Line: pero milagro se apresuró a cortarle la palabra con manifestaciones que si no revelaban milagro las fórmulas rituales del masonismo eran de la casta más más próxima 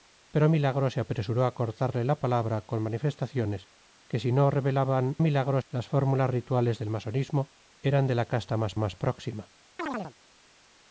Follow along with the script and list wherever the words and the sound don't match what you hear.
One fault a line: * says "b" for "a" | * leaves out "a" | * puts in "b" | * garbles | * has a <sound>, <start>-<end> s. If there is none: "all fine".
* has a chirp, 9.8-10.1 s